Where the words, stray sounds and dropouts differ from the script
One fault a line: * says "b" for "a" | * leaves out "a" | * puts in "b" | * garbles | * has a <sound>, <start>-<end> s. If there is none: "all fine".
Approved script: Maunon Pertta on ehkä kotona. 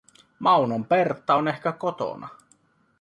all fine